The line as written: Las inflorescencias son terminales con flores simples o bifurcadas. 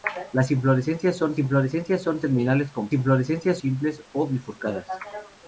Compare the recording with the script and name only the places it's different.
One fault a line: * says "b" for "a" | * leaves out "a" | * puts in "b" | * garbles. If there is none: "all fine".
* puts in "inflorescencias son"
* says "inflorescencias" for "flores"